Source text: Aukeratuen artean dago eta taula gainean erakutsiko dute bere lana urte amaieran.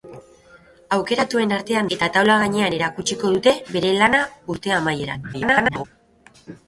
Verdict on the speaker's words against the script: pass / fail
fail